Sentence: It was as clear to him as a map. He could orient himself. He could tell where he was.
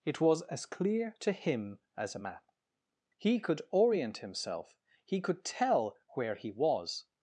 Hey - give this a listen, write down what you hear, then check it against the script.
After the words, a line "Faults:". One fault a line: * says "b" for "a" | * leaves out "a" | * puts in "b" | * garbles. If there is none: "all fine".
It was as clear to him as a map. He could orient himself. He could tell where he was.
Faults:
all fine